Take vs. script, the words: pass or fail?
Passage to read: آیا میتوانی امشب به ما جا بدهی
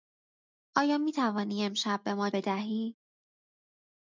fail